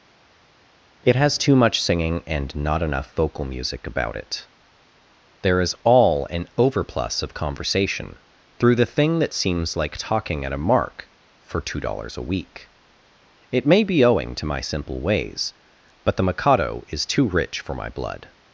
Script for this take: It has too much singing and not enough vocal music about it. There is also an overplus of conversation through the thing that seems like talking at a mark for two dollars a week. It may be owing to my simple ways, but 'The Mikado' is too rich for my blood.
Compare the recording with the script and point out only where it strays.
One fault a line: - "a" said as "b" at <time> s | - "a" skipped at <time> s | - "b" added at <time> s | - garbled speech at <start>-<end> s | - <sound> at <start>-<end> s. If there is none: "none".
- "also" said as "all" at 5.8 s